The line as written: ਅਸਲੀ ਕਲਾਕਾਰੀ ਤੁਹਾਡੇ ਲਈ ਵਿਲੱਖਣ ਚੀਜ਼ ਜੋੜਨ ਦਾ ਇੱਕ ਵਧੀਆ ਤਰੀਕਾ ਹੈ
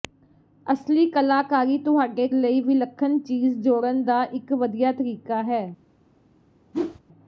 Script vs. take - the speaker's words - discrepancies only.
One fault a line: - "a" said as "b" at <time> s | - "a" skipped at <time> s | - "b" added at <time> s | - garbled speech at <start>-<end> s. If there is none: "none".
none